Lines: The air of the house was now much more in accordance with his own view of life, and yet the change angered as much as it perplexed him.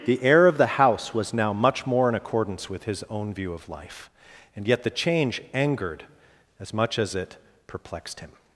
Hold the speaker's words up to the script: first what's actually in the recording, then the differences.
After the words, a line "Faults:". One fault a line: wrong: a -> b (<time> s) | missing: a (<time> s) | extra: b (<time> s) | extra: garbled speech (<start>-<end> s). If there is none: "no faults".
The air of the house was now much more in accordance with his own view of life, and yet the change angered as much as it perplexed him.
Faults:
no faults